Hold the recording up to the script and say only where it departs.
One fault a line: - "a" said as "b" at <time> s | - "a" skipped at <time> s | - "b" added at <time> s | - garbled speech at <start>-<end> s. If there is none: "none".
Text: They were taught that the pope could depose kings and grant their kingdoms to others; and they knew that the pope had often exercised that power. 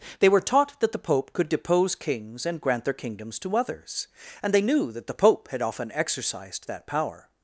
none